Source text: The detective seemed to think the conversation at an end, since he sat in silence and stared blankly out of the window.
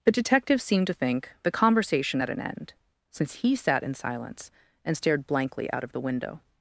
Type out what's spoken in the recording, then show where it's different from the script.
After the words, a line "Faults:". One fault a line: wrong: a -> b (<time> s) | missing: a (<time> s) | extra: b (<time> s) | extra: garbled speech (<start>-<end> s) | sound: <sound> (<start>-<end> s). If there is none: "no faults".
The detective seemed to think the conversation at an end, since he sat in silence and stared blankly out of the window.
Faults:
no faults